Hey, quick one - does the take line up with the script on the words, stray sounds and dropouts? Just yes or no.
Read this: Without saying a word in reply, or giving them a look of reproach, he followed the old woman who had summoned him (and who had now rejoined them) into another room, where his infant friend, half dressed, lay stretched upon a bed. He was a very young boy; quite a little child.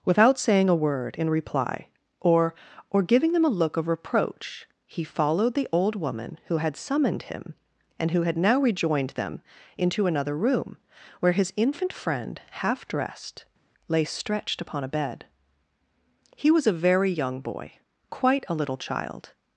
no